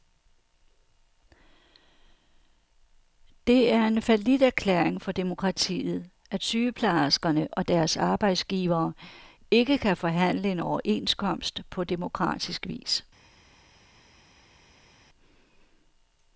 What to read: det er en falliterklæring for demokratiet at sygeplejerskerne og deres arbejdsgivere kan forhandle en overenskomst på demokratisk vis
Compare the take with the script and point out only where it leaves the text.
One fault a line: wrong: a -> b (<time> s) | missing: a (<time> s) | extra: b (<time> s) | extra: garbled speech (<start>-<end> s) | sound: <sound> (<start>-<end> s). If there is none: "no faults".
extra: ikke (9.5 s)